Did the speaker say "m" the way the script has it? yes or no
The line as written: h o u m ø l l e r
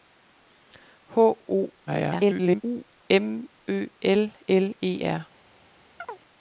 yes